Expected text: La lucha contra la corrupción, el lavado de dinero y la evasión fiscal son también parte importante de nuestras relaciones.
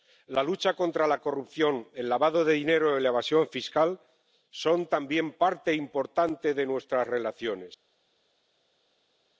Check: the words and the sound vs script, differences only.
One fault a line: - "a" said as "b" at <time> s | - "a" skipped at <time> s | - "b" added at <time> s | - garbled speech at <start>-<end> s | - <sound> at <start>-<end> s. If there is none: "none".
none